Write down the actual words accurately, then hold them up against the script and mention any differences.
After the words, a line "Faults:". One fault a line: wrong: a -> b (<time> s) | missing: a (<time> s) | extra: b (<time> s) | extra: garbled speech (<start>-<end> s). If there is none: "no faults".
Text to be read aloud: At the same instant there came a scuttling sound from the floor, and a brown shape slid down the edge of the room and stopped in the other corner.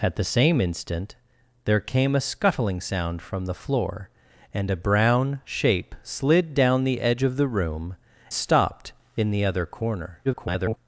At the same instant there came a scuttling sound from the floor, and a brown shape slid down the edge of the room stopped in the other corner. [garbled]
Faults:
missing: and (7.9 s)
extra: garbled speech (10.2-10.8 s)